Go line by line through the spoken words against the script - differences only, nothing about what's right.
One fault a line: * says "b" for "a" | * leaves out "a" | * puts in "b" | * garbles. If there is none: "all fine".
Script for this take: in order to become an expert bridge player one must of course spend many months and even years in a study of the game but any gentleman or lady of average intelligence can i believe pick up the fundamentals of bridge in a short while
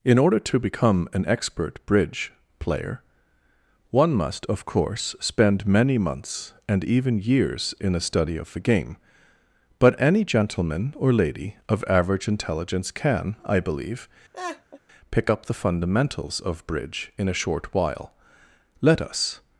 * puts in "let us"